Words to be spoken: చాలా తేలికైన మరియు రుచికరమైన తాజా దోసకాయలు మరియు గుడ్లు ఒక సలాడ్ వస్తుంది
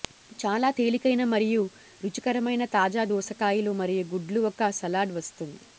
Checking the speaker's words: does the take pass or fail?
pass